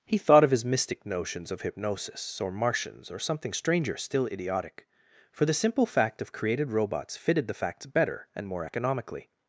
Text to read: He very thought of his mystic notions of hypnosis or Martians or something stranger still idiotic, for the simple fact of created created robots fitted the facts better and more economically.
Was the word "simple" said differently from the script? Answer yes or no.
no